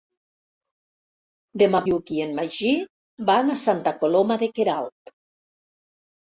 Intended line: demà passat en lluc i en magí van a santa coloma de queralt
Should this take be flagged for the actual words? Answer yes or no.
yes